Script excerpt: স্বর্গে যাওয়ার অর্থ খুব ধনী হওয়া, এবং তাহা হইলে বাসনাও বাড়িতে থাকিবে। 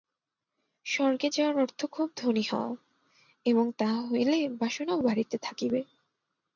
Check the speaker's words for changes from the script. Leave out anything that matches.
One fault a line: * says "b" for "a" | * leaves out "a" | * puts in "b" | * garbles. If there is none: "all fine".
all fine